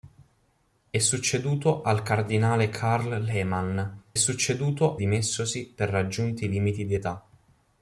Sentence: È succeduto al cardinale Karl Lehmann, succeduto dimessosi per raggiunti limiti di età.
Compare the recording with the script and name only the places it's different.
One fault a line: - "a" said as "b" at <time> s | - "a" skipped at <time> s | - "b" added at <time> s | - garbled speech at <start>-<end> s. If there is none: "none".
none